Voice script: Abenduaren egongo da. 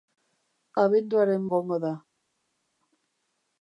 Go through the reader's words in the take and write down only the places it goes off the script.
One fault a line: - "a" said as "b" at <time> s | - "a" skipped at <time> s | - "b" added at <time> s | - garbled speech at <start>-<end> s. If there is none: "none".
none